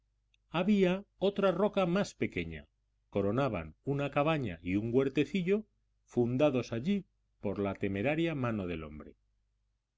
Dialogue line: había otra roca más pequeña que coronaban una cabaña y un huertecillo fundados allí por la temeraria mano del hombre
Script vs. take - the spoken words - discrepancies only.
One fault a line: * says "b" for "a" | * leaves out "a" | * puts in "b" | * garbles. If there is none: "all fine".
* leaves out "que"